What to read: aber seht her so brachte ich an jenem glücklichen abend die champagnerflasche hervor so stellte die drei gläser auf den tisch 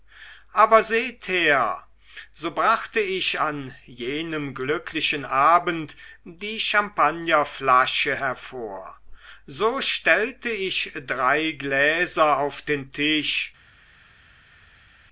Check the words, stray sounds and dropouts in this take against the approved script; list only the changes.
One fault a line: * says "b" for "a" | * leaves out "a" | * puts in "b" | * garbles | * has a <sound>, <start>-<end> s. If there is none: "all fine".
* says "ich" for "die"